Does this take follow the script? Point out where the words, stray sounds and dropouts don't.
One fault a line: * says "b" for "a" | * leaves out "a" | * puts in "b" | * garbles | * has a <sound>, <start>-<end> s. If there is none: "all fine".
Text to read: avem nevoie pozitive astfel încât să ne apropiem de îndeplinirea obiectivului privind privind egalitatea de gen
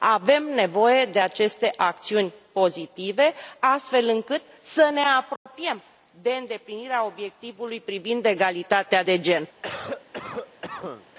* puts in "de aceste acțiuni"
* has a dropout, 5.4-5.5 s
* leaves out "privind"
* has a cough, 9.6-11.1 s